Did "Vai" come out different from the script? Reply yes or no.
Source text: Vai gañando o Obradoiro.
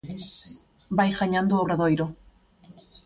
no